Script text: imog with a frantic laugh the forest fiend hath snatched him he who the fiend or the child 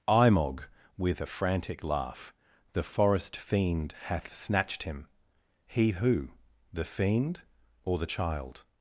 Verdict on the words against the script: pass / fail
pass